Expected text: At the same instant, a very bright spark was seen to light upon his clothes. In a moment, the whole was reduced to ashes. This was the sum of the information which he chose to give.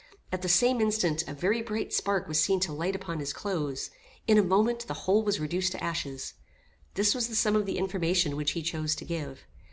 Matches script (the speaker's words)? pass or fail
pass